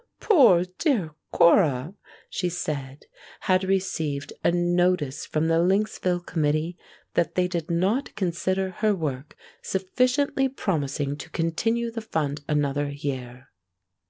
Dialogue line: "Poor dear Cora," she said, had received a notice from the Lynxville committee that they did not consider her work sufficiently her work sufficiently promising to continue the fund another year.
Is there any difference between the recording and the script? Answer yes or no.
yes